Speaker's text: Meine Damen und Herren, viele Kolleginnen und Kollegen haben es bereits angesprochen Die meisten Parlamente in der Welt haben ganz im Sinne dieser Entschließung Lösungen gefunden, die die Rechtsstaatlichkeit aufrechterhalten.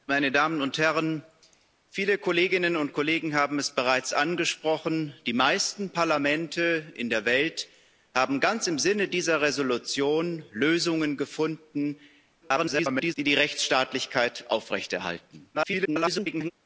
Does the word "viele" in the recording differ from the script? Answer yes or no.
no